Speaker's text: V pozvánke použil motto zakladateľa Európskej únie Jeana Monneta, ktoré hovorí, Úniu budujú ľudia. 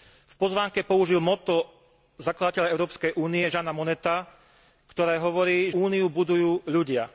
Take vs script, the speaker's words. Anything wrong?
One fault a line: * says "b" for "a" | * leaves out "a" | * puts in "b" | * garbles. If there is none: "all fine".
all fine